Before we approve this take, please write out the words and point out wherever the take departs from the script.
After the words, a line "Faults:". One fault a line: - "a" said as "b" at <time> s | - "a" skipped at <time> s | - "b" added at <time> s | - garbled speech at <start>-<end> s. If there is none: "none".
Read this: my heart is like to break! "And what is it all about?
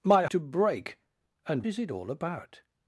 my to break! "And is it all about?
Faults:
- "heart is like" skipped at 0.2 s
- "what" skipped at 1.6 s